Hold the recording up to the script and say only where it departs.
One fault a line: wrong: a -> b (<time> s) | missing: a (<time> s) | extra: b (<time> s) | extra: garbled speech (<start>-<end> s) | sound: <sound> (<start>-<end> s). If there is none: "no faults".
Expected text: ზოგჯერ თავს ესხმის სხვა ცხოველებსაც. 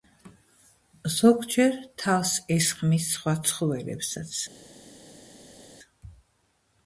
no faults